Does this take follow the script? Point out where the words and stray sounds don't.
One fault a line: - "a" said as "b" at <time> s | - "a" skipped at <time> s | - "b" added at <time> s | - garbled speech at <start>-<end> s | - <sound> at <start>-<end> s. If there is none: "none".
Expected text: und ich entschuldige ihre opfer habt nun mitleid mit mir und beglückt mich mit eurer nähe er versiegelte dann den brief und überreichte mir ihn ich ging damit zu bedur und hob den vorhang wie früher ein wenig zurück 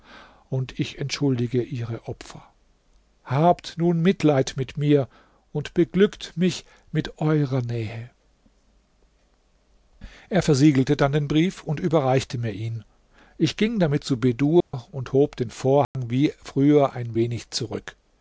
- dropout at 14.6-14.7 s
- dropout at 15.8-15.9 s